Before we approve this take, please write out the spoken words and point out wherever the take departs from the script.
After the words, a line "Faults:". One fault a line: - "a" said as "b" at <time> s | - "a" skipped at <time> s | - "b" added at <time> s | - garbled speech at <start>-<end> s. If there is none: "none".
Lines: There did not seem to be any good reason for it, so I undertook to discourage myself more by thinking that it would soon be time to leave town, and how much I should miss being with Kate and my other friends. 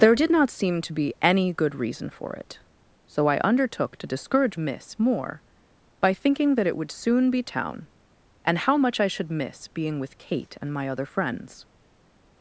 There did not seem to be any good reason for it, so I undertook to discourage miss more by thinking that it would soon be town, and how much I should miss being with Kate and my other friends.
Faults:
- "myself" said as "miss" at 4.6 s
- "time to leave" skipped at 7.4 s